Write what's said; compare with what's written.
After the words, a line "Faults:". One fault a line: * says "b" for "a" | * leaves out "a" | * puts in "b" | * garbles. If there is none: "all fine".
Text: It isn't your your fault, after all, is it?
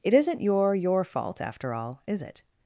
It isn't your your fault, after all, is it?
Faults:
all fine